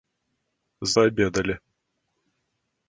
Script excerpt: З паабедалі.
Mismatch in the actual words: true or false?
false